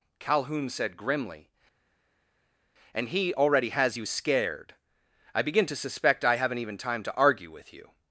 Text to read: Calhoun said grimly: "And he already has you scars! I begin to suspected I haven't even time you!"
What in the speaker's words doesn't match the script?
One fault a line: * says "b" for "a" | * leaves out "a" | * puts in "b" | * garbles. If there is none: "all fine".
* says "scared" for "scars"
* says "suspect" for "suspected"
* puts in "to argue with"